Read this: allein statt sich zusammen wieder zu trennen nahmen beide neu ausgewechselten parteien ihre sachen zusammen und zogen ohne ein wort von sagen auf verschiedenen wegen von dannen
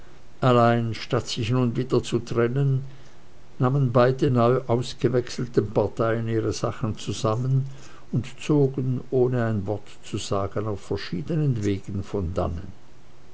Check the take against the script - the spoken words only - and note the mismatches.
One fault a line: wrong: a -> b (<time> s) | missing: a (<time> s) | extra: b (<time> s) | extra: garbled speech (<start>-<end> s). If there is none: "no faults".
wrong: zusammen -> nun (1.5 s)
wrong: von -> zu (10.0 s)